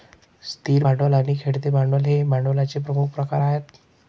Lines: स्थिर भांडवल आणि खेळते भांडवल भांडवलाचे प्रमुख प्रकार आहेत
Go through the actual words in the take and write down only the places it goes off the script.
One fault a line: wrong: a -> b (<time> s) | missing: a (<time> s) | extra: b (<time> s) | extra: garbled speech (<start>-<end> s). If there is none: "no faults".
extra: हे (2.1 s)